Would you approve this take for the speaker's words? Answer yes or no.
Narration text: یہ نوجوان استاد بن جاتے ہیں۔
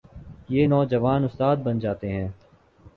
yes